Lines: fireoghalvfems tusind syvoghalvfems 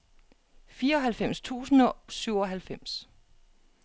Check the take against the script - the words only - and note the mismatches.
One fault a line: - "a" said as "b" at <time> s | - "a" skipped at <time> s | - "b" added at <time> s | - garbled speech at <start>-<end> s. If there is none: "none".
none